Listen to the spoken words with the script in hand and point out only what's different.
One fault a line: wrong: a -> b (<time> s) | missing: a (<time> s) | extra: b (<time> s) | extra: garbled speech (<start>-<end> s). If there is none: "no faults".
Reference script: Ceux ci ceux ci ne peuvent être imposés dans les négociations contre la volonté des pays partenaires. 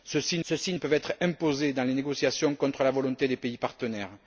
no faults